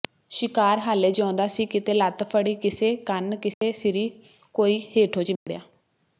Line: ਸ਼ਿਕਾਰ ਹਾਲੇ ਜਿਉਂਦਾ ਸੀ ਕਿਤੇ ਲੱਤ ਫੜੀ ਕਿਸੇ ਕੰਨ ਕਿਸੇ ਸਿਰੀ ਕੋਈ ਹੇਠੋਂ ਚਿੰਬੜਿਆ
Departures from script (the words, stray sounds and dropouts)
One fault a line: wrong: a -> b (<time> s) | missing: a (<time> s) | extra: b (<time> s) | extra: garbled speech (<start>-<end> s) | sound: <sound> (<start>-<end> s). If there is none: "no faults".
sound: dropout (3.5-3.6 s)
sound: dropout (5.4-5.5 s)